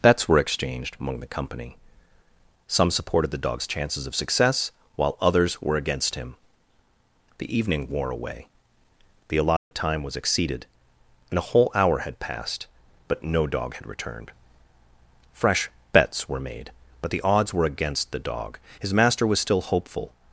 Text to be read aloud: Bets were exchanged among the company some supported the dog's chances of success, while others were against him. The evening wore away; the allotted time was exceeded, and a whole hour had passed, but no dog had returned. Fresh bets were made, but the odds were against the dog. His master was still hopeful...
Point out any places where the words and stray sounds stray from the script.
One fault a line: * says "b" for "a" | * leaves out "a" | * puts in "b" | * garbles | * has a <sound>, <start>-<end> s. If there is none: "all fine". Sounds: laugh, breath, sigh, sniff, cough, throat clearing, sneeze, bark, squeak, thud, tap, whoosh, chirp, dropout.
* has a dropout, 9.6-9.7 s